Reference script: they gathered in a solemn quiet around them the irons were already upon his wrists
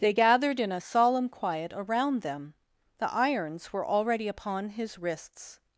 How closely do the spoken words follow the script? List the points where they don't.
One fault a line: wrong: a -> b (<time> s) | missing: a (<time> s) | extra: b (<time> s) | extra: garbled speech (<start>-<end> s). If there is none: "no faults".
no faults